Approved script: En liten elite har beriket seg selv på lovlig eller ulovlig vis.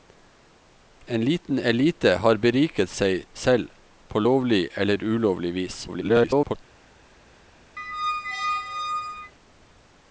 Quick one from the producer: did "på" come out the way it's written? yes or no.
yes